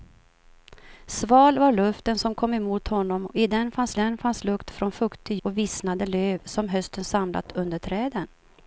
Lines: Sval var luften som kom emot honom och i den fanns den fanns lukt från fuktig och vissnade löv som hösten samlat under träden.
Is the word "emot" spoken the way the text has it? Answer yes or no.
yes